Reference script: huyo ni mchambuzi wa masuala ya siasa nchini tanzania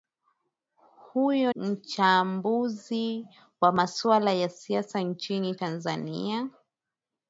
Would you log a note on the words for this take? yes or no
yes